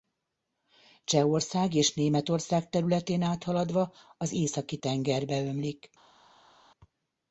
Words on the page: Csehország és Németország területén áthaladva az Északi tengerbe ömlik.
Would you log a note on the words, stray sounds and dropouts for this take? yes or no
no